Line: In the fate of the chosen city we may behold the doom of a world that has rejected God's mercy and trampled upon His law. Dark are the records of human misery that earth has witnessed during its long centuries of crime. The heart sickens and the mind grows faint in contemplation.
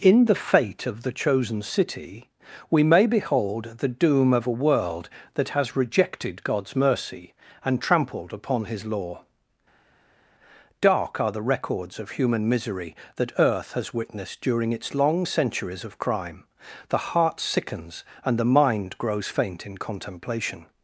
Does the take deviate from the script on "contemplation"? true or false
false